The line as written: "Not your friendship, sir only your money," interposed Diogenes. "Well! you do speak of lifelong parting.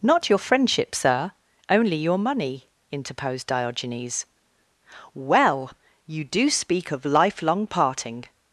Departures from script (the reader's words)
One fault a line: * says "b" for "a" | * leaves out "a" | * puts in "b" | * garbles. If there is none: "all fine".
all fine